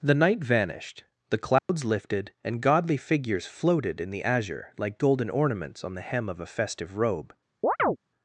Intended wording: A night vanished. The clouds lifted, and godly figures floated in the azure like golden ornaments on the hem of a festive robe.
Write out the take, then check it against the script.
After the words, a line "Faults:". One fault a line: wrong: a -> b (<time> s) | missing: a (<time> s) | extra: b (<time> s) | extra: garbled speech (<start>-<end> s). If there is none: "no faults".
The night vanished. The clouds lifted, and godly figures floated in the azure like golden ornaments on the hem of a festive robe.
Faults:
wrong: A -> The (0.0 s)